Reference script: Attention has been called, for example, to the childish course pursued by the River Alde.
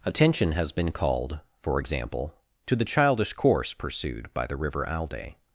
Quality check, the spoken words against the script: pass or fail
pass